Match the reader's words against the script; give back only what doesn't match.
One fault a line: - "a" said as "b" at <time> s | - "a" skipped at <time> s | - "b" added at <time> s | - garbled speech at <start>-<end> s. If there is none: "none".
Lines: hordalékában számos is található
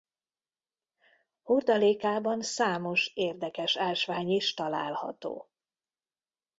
- "érdekes ásvány" added at 3.1 s